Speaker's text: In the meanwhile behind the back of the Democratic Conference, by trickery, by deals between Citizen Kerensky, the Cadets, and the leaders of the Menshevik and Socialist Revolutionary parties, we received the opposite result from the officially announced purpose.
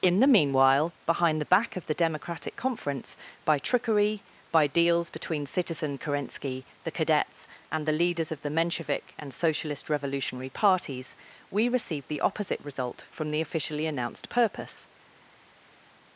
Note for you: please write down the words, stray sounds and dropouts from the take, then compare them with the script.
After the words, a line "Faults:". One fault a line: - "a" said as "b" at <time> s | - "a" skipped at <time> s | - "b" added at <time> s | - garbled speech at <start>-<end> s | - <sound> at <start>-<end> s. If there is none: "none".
In the meanwhile behind the back of the Democratic Conference, by trickery, by deals between Citizen Kerensky, the Cadets, and the leaders of the Menshevik and Socialist Revolutionary parties, we received the opposite result from the officially announced purpose.
Faults:
none